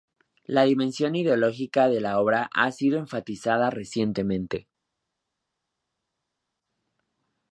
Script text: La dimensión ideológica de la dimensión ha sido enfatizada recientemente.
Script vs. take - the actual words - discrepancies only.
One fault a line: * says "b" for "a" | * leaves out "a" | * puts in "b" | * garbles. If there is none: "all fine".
* says "obra" for "dimensión"